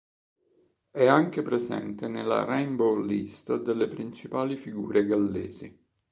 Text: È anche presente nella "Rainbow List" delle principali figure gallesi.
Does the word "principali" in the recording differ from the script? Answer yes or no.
no